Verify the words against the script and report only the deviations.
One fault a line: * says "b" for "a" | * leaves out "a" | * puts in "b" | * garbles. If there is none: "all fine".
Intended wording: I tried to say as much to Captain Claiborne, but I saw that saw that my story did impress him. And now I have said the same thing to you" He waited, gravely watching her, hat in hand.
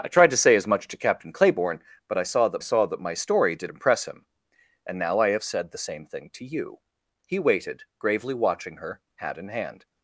all fine